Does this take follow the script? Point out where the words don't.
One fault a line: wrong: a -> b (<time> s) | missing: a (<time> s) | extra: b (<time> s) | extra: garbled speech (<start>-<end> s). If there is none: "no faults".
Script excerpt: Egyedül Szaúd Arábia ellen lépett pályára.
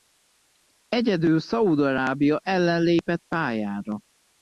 no faults